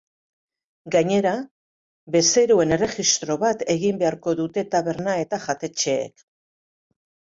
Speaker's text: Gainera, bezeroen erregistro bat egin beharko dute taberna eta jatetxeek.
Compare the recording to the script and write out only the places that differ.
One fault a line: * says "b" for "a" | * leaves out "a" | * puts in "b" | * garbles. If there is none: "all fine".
all fine